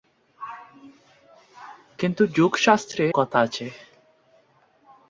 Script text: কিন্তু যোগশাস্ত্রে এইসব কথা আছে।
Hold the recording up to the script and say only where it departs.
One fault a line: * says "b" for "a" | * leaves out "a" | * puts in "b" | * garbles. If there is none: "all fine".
* leaves out "এইসব"